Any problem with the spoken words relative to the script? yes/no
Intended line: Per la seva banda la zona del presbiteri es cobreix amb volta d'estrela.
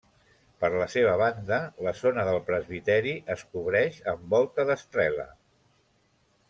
no